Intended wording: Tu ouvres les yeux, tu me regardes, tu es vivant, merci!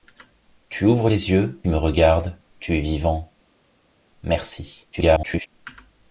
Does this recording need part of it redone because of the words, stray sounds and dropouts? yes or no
yes